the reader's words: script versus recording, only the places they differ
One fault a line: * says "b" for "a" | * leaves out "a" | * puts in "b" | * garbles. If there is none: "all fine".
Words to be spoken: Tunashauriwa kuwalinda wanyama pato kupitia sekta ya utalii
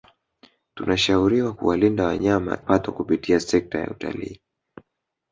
all fine